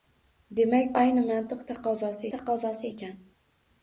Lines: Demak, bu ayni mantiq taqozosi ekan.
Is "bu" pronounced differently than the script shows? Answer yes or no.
yes